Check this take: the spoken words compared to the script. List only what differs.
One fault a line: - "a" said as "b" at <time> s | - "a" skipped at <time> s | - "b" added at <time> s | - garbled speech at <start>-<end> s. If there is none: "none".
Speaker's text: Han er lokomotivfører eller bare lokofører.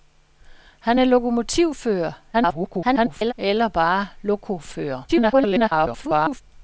- garbled speech at 2.3-3.3 s
- garbled speech at 5.1-6.4 s